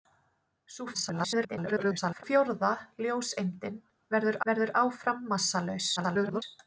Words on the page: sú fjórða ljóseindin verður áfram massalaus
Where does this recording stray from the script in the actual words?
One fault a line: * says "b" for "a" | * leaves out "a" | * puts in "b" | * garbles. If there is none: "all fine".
* garbles
* puts in "verður"
* garbles